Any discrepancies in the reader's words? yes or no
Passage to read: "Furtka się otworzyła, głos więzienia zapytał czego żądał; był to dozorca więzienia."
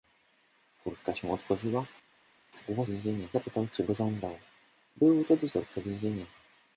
no